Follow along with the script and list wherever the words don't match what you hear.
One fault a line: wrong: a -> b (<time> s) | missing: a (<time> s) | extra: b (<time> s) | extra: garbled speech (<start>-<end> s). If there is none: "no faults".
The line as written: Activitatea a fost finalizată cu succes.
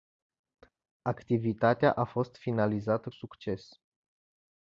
missing: cu (3.1 s)